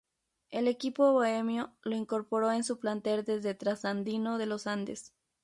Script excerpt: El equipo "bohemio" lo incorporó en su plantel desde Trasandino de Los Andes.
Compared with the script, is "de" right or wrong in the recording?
right